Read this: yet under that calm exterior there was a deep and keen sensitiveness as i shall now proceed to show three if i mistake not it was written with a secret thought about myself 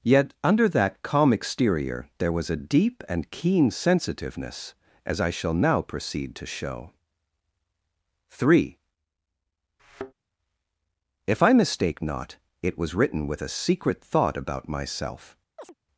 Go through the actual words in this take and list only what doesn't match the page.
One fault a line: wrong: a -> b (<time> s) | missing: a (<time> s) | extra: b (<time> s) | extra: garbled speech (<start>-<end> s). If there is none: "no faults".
no faults